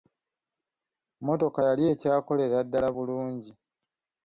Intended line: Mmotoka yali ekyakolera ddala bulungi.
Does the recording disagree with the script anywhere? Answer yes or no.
no